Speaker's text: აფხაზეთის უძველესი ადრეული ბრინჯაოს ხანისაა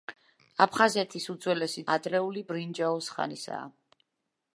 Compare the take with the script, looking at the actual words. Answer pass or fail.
pass